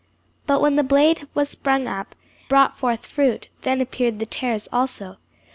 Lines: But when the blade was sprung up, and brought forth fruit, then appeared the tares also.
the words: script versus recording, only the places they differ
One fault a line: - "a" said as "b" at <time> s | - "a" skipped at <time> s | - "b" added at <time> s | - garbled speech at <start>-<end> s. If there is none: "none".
- "and" skipped at 2.1 s